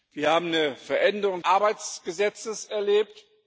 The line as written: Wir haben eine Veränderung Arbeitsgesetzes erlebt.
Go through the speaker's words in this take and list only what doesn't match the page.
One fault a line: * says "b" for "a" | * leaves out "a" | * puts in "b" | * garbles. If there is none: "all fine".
all fine